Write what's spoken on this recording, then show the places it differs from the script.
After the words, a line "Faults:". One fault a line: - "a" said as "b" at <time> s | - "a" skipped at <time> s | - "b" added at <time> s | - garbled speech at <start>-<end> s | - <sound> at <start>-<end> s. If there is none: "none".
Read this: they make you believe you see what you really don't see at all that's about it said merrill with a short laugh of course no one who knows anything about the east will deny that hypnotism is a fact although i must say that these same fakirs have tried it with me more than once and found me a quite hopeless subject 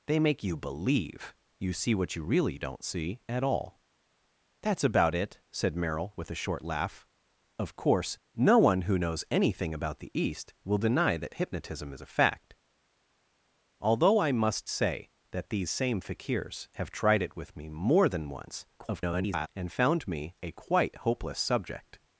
they make you believe you see what you really don't see at all that's about it said merrill with a short laugh of course no one who knows anything about the east will deny that hypnotism is a fact although i must say that these same fakirs have tried it with me more than once [garbled] and found me a quite hopeless subject
Faults:
- garbled speech at 18.8-19.5 s